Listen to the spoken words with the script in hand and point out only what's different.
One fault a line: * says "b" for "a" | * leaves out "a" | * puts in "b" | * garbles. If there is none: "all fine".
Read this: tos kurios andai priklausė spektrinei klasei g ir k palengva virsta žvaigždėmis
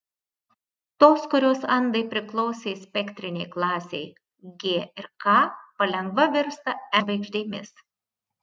all fine